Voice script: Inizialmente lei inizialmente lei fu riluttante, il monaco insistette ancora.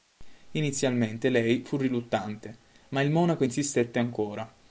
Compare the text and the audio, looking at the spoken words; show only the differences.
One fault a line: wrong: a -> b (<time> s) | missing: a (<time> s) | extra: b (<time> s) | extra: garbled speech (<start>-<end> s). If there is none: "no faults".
missing: inizialmente lei (1.6 s)
extra: ma (2.9 s)